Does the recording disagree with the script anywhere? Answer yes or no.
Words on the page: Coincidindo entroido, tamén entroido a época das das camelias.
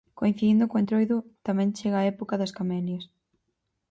yes